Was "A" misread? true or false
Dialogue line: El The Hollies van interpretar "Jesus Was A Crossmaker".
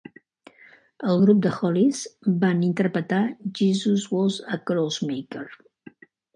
false